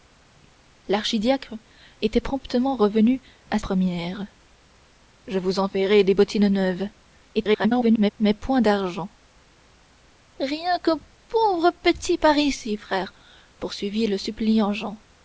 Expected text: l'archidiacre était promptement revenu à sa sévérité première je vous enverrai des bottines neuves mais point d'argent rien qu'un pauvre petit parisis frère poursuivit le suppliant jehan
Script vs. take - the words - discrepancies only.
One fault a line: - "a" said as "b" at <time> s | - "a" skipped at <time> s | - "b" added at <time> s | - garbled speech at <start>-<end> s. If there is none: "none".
- "sa sévérité" skipped at 3.6 s
- garbled speech at 7.3-8.1 s